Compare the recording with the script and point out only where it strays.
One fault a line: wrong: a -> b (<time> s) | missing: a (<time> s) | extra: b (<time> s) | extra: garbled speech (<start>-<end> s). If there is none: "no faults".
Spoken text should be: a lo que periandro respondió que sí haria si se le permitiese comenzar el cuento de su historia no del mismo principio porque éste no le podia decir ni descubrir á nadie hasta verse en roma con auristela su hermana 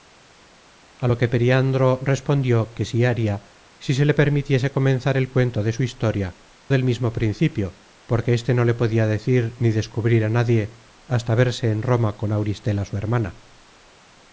missing: no (6.4 s)